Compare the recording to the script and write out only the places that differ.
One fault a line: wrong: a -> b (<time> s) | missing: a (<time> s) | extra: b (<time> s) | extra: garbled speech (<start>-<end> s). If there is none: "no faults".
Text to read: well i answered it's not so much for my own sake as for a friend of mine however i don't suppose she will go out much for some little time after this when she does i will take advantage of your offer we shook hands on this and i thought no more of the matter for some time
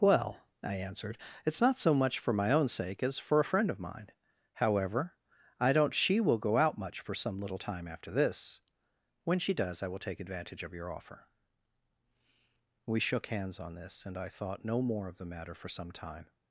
missing: suppose (5.9 s)